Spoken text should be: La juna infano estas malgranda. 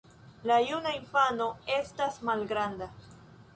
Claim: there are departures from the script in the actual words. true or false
false